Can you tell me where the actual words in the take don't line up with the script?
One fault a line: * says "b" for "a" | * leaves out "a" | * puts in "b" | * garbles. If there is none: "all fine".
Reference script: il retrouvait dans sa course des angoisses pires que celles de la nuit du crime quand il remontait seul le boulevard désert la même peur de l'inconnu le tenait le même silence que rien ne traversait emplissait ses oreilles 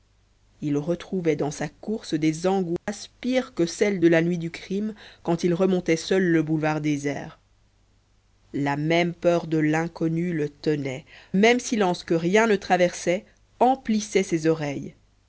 * leaves out "le"